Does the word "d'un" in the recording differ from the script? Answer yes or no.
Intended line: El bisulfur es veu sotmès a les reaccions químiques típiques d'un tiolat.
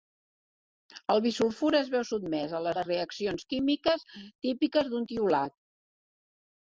no